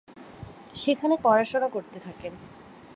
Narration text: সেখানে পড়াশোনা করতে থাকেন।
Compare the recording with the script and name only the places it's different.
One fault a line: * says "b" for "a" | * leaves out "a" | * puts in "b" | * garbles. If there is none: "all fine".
all fine